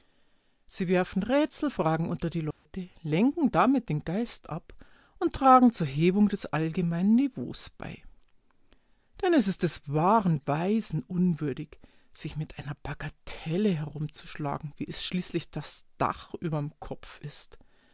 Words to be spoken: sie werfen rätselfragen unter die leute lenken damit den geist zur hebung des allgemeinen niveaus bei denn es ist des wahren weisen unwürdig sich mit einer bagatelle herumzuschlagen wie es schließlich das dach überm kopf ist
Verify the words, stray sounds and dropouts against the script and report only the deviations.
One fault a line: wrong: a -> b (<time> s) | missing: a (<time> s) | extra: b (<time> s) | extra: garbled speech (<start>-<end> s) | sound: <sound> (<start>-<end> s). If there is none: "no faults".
sound: dropout (2.5-2.7 s)
extra: ab und tragen (4.5 s)